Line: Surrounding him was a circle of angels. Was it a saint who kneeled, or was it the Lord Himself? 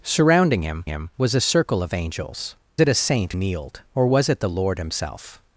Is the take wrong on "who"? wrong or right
wrong